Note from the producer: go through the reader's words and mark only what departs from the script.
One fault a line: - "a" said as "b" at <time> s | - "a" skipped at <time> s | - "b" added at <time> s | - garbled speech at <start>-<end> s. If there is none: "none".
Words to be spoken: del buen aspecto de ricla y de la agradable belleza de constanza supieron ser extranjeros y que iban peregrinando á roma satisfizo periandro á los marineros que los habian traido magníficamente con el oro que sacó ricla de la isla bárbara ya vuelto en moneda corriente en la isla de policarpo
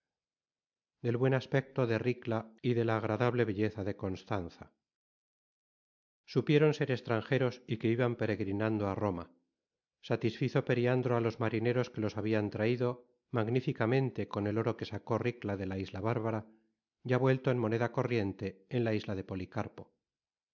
none